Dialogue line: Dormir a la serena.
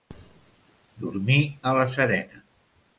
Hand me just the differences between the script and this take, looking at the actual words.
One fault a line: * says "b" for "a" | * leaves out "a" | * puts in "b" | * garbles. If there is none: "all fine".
all fine